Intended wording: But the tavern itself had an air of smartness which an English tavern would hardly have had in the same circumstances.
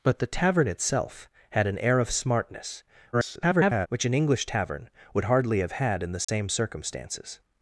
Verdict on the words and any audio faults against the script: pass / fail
fail